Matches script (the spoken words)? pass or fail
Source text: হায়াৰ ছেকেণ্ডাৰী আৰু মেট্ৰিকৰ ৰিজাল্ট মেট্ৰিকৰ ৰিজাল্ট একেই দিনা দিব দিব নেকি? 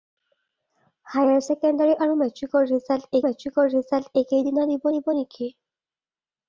pass